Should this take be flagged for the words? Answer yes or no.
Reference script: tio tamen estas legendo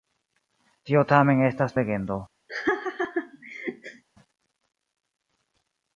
no